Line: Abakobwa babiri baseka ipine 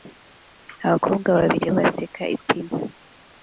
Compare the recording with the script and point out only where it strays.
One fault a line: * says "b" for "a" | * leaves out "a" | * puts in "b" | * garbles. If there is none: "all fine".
all fine